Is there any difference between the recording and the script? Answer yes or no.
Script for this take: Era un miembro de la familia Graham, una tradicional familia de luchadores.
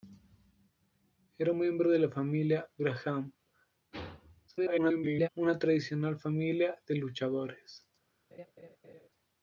yes